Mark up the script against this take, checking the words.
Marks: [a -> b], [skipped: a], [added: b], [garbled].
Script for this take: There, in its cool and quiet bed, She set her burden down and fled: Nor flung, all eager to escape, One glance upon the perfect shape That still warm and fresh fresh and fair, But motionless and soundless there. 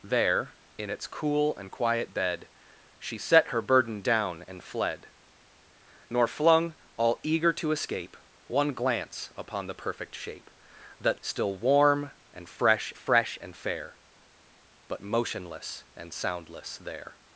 There, in its cool and quiet bed, She set her burden down and fled: Nor flung, all eager to escape, One glance upon the perfect shape That still warm and fresh fresh and fair, But motionless and soundless there.